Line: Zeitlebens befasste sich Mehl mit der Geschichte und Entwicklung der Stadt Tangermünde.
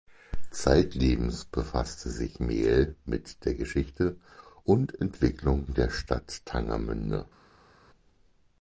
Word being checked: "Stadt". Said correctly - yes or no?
yes